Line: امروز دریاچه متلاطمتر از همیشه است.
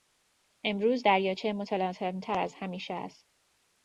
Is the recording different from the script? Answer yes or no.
no